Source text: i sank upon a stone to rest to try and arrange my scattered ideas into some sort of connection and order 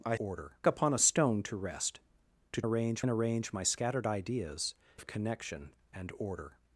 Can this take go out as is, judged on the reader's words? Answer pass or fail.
fail